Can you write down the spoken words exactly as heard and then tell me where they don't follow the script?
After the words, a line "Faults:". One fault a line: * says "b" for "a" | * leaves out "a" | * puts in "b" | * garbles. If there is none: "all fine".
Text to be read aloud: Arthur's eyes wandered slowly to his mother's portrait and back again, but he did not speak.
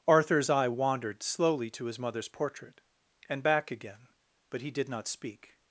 Arthur's eye wandered slowly to his mother's portrait and back again, but he did not speak.
Faults:
* says "eye" for "eyes"